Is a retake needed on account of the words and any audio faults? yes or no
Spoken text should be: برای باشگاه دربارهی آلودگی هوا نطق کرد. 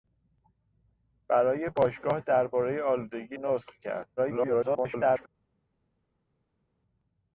yes